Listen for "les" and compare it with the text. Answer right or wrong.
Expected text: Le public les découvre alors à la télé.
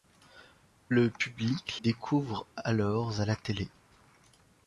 wrong